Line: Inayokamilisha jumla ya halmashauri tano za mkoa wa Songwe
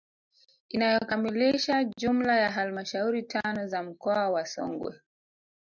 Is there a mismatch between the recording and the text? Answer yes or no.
no